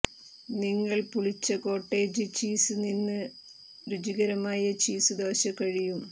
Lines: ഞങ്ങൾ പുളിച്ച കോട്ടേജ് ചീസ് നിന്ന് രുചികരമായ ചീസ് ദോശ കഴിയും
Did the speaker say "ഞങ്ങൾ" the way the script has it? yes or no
no